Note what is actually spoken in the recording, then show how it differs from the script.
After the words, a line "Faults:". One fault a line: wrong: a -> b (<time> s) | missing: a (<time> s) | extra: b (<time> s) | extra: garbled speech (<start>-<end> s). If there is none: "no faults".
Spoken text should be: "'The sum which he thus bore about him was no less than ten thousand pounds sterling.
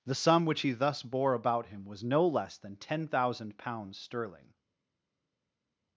"'The sum which he thus bore about him was no less than ten thousand pounds sterling.
Faults:
no faults